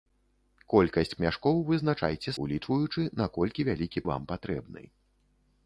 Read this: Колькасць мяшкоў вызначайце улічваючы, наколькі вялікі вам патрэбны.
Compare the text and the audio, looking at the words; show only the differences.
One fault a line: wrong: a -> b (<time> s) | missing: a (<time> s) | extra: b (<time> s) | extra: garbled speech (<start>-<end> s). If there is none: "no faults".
no faults